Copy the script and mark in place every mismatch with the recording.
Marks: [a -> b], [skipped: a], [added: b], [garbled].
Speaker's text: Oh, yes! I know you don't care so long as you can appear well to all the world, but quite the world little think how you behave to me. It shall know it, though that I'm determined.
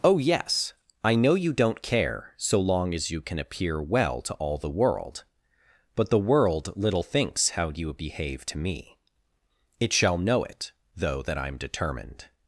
Oh, yes! I know you don't care so long as you can appear well to all the world, but [skipped: quite] the world little [think -> thinks] how you behave to me. It shall know it, though that I'm determined.